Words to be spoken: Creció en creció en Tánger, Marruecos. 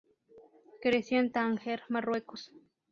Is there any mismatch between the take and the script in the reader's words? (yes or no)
yes